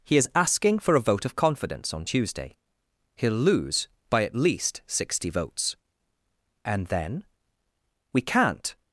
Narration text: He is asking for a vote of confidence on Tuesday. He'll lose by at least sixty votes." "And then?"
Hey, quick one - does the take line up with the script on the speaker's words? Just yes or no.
no